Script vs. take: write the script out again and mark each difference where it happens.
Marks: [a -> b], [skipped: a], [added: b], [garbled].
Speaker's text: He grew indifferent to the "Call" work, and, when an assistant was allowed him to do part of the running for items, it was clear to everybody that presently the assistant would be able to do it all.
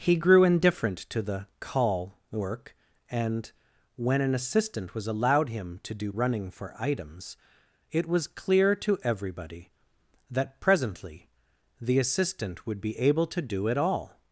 He grew indifferent to the "Call" work, and, when an assistant was allowed him to do [skipped: part of the] running for items, it was clear to everybody that presently the assistant would be able to do it all.